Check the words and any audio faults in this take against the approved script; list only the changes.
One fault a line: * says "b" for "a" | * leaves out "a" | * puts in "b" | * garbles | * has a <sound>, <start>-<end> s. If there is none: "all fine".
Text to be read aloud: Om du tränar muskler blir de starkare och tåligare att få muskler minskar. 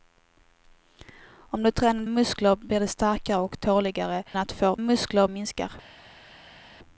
all fine